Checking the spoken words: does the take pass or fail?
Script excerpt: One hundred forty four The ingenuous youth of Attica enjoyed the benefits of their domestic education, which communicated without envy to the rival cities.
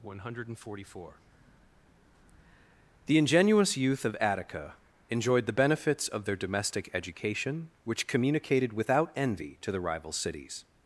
pass